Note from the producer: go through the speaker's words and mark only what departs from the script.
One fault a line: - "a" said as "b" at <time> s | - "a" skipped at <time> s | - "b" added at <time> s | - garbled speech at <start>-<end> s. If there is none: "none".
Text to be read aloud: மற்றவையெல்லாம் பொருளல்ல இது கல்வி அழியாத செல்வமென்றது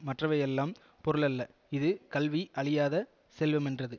none